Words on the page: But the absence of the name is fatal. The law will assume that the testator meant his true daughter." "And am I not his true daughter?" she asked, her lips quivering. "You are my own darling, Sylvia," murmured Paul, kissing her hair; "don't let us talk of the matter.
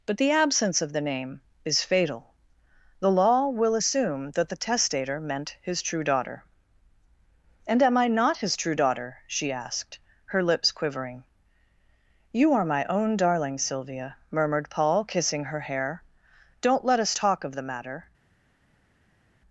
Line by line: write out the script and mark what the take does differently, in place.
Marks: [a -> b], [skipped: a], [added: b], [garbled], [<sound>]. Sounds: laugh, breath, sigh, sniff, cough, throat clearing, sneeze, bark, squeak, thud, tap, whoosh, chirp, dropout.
But the absence of the name is fatal. The law will assume that the testator meant his true daughter." "And am I not his true daughter?" she asked, her lips quivering. "You are my own darling, Sylvia," murmured Paul, kissing her hair; "don't let us talk of the matter.